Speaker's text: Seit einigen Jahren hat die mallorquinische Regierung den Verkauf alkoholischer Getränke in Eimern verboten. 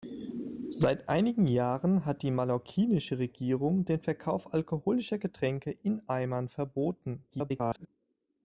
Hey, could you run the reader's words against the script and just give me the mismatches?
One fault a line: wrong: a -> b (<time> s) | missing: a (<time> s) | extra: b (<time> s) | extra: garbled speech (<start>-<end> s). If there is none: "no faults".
extra: garbled speech (7.3-7.9 s)